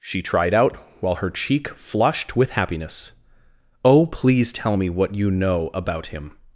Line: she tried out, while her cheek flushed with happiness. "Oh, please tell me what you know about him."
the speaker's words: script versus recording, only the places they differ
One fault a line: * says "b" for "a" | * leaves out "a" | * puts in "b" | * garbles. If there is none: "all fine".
all fine